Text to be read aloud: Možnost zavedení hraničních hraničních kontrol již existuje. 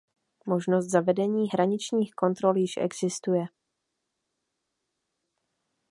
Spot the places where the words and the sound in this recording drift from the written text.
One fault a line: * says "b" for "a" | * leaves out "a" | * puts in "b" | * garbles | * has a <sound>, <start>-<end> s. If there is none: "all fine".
* leaves out "hraničních"